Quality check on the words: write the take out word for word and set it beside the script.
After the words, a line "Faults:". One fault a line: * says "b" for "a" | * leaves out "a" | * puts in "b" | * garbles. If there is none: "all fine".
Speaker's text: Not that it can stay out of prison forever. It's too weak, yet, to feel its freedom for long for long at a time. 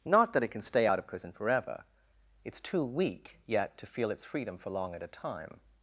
Not that it can stay out of prison forever. It's too weak, yet, to feel its freedom for long at a time.
Faults:
* leaves out "for long"